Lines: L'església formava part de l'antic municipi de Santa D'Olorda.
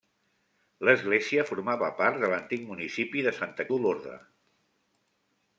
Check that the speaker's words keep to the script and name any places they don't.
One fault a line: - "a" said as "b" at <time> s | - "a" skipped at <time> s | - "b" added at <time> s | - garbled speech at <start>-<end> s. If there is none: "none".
none